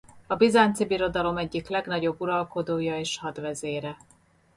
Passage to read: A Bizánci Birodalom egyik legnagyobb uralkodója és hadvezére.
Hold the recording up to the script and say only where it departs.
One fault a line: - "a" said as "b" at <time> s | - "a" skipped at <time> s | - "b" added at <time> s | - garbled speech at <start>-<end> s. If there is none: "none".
none